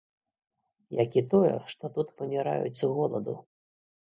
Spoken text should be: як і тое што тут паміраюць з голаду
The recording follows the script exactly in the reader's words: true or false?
true